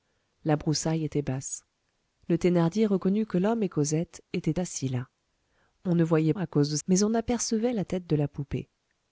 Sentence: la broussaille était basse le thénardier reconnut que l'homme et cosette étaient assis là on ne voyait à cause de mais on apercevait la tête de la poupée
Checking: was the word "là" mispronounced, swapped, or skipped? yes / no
no